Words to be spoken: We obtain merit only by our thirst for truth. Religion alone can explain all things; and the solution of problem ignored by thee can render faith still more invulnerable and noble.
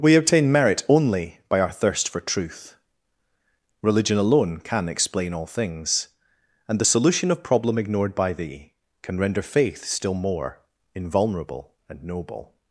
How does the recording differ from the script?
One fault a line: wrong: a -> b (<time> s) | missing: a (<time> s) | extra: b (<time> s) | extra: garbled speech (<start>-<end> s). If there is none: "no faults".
no faults